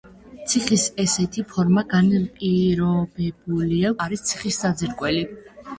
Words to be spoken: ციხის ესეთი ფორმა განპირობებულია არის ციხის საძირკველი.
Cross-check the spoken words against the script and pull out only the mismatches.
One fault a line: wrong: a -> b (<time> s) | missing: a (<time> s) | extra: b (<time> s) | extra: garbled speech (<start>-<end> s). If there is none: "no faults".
no faults